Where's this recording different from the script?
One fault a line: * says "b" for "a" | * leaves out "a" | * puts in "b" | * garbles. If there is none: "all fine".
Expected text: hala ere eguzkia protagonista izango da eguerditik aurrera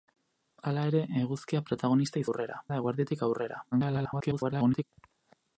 * says "aurrera" for "izango"
* garbles